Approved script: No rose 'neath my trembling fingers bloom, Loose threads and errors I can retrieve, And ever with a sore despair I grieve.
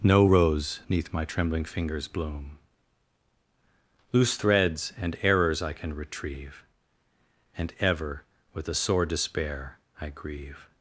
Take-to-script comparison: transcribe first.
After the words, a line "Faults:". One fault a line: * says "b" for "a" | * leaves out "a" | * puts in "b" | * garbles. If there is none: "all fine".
No rose 'neath my trembling fingers bloom, Loose threads and errors I can retrieve, And ever with a sore despair I grieve.
Faults:
all fine